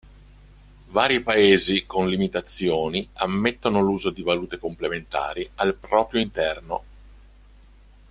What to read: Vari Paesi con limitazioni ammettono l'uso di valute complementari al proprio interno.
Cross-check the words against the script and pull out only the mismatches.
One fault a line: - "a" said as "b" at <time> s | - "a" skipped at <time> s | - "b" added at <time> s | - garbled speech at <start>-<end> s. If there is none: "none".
none